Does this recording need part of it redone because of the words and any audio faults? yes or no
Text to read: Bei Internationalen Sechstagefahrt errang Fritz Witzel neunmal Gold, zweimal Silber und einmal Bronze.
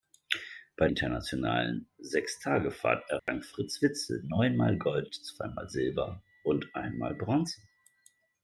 yes